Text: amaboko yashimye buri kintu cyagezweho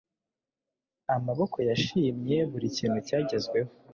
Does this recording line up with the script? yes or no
yes